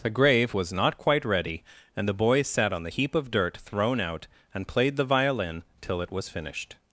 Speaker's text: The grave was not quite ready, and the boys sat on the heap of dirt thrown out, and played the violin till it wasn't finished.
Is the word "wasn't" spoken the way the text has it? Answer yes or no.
no